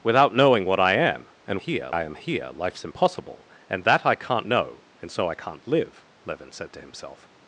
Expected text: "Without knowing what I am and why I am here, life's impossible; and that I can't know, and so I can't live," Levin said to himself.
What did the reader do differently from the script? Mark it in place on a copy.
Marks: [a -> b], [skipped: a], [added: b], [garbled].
"Without knowing what I am and [why -> here] I am here, life's impossible; and that I can't know, and so I can't live," Levin said to himself.